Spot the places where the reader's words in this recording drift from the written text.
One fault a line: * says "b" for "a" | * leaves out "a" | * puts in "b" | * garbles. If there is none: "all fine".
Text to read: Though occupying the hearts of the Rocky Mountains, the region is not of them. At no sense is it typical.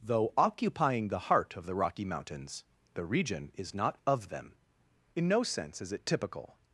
* says "heart" for "hearts"
* says "In" for "At"